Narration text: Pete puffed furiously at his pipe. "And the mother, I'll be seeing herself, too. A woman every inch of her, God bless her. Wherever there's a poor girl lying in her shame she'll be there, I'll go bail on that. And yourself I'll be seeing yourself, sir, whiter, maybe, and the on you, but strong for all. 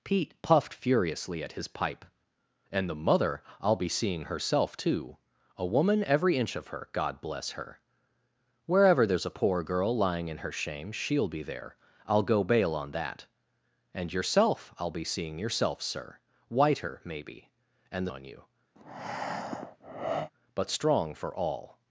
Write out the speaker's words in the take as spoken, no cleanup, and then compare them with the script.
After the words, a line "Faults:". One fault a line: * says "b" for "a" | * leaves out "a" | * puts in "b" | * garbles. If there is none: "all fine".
Pete puffed furiously at his pipe. "And the mother, I'll be seeing herself, too. A woman every inch of her, God bless her. Wherever there's a poor girl lying in her shame she'll be there, I'll go bail on that. And yourself I'll be seeing yourself, sir, whiter, maybe, and the on you, but strong for all.
Faults:
all fine